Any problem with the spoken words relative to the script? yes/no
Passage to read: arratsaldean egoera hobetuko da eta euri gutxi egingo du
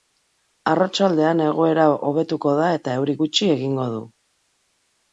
no